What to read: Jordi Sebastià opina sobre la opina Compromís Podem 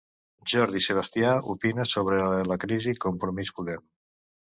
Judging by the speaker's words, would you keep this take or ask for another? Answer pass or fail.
fail